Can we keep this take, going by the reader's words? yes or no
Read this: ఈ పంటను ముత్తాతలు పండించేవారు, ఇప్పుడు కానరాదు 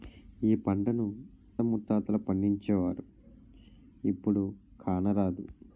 yes